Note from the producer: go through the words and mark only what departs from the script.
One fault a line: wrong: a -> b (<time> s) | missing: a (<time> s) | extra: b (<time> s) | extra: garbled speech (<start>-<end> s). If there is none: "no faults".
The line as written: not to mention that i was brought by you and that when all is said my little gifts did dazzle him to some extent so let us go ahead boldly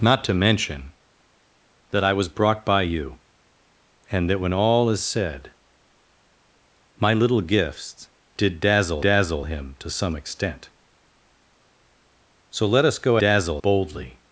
extra: dazzle (9.0 s)
wrong: ahead -> dazzle (13.2 s)